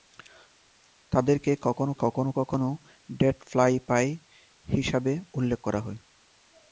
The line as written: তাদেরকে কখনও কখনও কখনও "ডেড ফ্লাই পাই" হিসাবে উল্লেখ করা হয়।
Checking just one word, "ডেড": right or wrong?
right